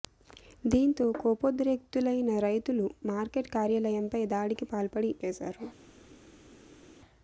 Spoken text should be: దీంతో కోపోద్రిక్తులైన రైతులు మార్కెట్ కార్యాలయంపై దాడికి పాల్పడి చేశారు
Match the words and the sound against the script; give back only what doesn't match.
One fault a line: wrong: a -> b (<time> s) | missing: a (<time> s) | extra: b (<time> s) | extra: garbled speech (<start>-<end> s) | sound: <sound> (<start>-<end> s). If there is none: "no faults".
no faults